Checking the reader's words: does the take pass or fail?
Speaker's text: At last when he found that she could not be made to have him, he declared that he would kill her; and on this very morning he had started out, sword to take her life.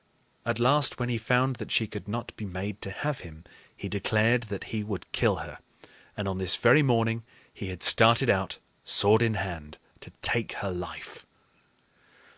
fail